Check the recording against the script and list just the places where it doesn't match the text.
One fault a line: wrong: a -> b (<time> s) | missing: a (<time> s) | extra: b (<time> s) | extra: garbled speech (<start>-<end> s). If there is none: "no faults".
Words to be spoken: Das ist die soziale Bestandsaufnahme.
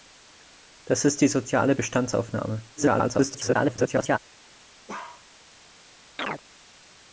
extra: garbled speech (2.8-4.2 s)